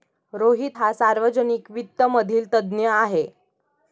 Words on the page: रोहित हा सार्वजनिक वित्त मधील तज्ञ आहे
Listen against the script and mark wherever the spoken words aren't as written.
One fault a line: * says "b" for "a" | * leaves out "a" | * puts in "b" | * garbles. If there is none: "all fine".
all fine